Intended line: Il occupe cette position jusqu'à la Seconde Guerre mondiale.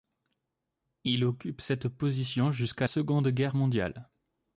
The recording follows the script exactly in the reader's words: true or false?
false